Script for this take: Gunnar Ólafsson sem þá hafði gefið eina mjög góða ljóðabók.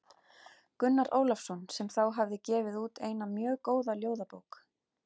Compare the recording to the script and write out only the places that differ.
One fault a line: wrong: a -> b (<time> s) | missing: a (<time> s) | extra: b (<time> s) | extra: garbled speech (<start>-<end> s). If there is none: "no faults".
extra: út (2.8 s)